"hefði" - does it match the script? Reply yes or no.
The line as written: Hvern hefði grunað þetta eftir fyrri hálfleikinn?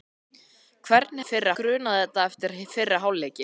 no